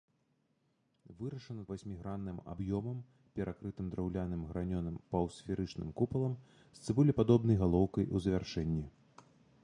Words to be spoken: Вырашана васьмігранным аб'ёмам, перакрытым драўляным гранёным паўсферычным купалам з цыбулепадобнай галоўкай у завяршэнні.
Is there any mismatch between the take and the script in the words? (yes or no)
no